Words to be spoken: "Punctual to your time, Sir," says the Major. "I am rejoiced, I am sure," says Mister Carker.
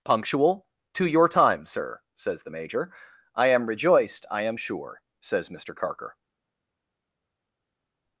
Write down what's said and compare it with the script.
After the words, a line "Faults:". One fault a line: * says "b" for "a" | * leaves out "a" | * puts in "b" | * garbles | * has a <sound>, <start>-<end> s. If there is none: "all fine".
"Punctual to your time, Sir," says the Major. "I am rejoiced, I am sure," says Mister Carker.
Faults:
all fine